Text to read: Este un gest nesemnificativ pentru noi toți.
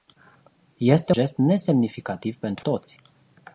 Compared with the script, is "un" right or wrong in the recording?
wrong